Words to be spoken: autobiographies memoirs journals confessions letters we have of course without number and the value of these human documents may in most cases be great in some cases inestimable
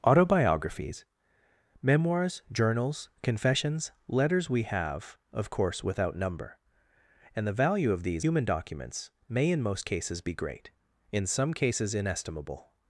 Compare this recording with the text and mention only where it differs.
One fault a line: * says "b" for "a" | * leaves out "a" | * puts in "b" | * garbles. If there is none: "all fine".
all fine